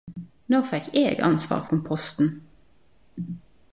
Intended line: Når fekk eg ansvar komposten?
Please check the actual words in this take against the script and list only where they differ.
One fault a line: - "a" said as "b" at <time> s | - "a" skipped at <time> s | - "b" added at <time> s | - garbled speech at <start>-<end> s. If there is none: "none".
none